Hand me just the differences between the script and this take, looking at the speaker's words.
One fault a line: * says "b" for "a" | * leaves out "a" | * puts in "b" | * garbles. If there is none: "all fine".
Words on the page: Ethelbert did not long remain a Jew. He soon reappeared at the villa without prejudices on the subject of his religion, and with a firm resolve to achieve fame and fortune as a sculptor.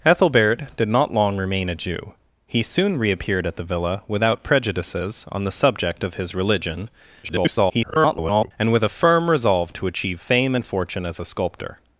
* garbles